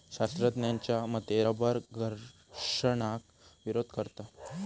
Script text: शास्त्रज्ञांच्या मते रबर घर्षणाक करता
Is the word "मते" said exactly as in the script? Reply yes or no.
yes